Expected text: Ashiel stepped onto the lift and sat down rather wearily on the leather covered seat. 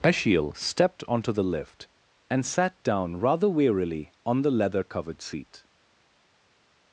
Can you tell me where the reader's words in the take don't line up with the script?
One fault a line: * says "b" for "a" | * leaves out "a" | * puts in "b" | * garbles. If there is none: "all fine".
all fine